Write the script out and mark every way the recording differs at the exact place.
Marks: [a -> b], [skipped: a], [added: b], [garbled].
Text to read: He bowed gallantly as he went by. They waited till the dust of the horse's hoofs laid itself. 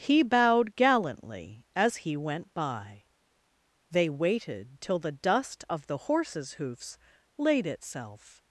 He bowed gallantly as he went by. They waited till the dust of the horse's hoofs laid itself.